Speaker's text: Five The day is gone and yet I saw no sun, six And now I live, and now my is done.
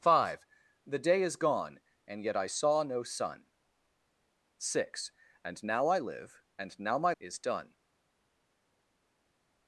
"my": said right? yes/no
yes